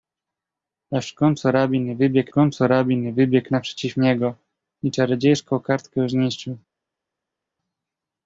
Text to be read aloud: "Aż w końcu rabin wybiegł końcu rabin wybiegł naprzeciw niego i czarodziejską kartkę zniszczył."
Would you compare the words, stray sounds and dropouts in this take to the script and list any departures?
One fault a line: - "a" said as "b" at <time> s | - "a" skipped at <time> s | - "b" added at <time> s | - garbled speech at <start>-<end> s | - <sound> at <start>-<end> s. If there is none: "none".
none